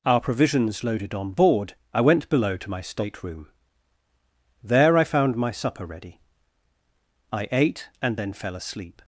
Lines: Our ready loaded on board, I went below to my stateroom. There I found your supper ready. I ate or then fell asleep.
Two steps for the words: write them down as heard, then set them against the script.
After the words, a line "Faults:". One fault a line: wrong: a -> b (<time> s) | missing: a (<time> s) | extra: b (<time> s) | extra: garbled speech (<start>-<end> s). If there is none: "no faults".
Our provisions loaded on board, I went below to my stateroom. There I found my supper ready. I ate and then fell asleep.
Faults:
wrong: ready -> provisions (0.2 s)
wrong: your -> my (5.4 s)
wrong: or -> and (8.0 s)